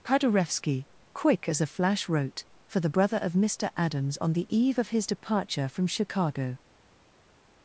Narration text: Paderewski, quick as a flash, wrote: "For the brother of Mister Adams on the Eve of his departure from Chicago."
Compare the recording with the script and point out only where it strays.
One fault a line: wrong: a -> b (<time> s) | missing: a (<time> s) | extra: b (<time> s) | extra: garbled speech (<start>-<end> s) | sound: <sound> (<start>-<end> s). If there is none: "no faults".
no faults